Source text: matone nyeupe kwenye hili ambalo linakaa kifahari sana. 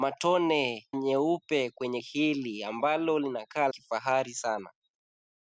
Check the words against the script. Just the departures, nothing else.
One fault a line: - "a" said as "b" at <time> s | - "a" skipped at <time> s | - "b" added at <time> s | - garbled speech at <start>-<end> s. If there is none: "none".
none